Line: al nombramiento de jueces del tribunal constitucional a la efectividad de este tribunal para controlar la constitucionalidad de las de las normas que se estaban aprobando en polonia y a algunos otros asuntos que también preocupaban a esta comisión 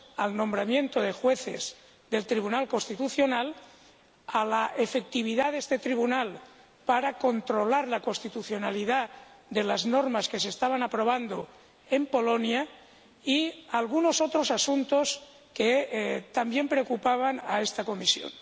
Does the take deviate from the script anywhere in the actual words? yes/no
yes